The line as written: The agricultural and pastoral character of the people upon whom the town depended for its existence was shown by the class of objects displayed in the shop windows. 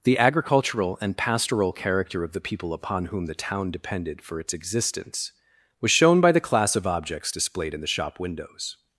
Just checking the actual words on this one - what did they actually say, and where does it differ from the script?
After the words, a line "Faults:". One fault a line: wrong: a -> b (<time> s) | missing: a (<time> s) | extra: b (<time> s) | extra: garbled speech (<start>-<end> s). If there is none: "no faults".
The agricultural and pastoral character of the people upon whom the town depended for its existence was shown by the class of objects displayed in the shop windows.
Faults:
no faults